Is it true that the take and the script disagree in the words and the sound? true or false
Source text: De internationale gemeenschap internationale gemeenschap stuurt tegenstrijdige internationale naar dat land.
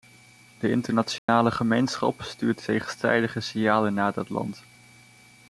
true